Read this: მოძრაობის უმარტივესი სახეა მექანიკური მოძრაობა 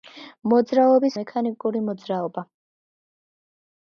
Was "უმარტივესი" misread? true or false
true